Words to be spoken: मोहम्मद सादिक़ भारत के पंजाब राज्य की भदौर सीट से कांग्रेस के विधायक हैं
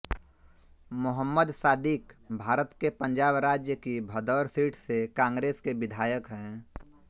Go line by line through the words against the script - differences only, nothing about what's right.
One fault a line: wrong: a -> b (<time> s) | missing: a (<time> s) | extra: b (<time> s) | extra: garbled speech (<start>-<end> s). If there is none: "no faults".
no faults